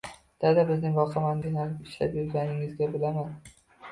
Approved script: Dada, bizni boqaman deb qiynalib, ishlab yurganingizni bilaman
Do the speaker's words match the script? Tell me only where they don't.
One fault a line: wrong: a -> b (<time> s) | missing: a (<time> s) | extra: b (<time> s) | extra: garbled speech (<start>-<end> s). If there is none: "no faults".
missing: deb (1.4 s)